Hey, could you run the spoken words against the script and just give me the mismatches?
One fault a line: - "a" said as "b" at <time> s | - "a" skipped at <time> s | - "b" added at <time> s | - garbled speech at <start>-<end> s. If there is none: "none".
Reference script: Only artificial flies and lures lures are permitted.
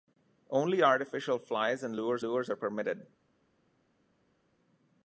none